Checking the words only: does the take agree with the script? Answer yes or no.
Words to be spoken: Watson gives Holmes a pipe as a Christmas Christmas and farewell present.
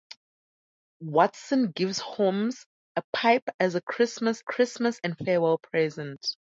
yes